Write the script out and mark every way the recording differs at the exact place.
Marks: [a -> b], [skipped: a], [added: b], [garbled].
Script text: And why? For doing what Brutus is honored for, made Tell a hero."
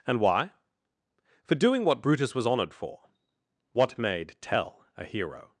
And why? For doing what Brutus [is -> was] honored for, [added: what] made Tell a hero."